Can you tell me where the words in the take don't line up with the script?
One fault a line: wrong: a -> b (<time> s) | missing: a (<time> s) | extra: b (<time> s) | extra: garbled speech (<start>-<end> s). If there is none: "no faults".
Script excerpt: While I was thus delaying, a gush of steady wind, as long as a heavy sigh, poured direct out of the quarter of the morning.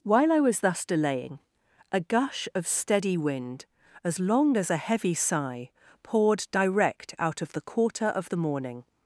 no faults